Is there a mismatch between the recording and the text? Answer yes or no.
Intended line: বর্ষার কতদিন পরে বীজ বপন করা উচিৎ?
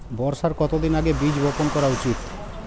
yes